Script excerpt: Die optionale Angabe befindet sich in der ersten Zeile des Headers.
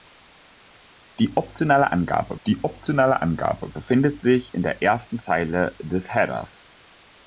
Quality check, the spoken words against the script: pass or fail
fail